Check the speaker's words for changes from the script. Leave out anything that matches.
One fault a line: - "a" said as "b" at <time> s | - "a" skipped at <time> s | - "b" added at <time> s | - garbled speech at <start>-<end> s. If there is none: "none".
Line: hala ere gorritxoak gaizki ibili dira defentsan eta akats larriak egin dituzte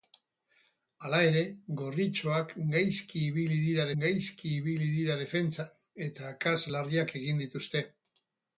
- "gaizki ibili dira" added at 4.0 s